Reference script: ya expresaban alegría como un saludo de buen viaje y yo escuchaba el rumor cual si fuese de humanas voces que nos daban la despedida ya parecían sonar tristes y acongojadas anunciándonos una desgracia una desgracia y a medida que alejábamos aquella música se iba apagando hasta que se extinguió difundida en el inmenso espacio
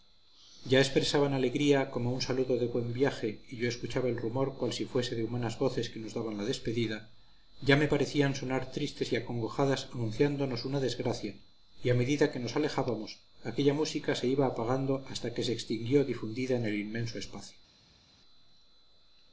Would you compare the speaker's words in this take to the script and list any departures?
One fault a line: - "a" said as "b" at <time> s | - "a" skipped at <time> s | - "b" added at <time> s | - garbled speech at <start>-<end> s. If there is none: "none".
- "me" added at 7.8 s
- "una desgracia" skipped at 11.3 s
- "nos" added at 12.4 s